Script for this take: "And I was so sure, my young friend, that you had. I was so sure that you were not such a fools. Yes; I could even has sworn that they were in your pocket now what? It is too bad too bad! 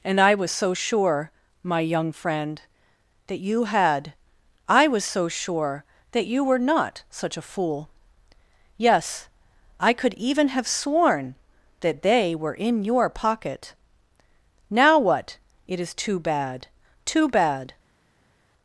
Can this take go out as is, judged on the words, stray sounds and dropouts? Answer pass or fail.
fail